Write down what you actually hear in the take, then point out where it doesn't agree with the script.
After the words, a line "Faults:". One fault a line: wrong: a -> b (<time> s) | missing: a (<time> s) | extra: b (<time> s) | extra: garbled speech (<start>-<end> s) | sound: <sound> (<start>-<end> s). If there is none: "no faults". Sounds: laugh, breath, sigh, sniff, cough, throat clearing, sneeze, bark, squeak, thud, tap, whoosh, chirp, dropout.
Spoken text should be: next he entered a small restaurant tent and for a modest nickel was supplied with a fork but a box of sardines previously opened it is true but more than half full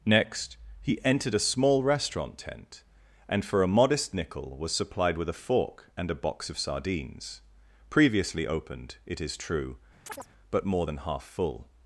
next he entered a small restaurant tent and for a modest nickel was supplied with a fork and a box of sardines previously opened it is true but more than half full
Faults:
wrong: but -> and (6.0 s)
sound: chirp (10.1-10.3 s)